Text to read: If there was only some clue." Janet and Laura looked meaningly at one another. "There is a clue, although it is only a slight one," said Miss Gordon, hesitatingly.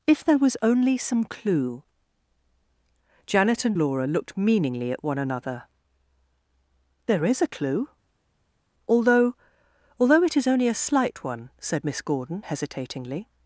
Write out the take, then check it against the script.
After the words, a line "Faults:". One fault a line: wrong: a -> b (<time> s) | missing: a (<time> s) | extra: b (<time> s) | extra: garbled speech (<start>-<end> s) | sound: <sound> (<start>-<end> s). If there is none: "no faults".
If there was only some clue." Janet and Laura looked meaningly at one another. "There is a clue, although although it is only a slight one," said Miss Gordon, hesitatingly.
Faults:
extra: although (10.0 s)